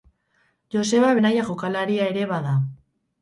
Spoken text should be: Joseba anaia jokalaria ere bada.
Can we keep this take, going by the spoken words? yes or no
yes